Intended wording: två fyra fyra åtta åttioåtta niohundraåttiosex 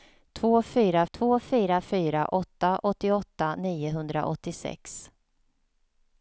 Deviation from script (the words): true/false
true